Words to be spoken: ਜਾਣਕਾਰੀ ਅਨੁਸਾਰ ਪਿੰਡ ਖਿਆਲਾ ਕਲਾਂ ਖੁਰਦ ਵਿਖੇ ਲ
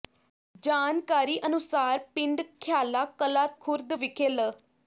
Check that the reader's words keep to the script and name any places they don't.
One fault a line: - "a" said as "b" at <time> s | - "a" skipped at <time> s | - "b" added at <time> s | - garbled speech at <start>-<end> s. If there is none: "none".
none